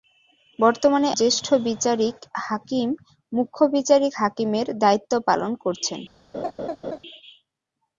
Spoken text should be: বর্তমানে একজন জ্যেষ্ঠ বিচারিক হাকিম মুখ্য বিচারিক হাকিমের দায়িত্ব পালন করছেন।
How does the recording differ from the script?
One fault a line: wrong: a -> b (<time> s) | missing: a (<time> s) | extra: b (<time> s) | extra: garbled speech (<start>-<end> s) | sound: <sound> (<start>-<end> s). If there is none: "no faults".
missing: একজন (1.1 s)
sound: laugh (6.3-7.0 s)